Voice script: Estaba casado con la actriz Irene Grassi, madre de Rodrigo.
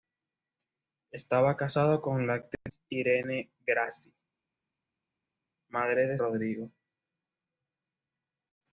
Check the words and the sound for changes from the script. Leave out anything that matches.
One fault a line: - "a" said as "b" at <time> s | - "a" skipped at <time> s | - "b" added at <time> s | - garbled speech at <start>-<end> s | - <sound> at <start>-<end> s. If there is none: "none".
none